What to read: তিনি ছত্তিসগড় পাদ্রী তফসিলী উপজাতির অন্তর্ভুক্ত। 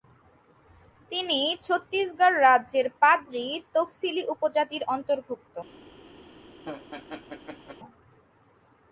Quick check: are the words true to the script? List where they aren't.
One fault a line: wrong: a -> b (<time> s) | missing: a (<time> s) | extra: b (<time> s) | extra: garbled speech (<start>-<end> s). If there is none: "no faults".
extra: রাজ্যের (2.4 s)